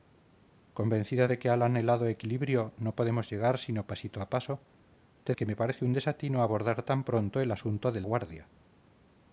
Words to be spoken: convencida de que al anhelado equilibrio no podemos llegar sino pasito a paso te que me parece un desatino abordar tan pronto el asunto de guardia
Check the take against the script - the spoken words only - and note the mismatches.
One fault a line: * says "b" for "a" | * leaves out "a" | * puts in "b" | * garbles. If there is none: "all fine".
all fine